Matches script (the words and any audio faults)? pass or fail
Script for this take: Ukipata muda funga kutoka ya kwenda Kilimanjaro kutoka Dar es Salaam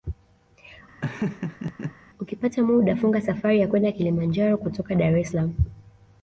fail